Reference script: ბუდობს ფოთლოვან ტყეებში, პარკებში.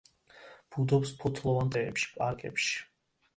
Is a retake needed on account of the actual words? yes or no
no